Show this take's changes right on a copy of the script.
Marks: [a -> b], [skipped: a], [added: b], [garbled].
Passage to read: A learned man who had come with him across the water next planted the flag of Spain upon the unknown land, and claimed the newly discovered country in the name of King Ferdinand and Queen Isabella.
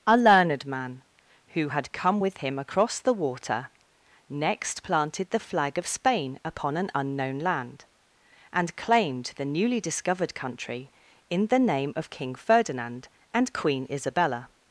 A learned man who had come with him across the water next planted the flag of Spain upon [the -> an] unknown land, and claimed the newly discovered country in the name of King Ferdinand and Queen Isabella.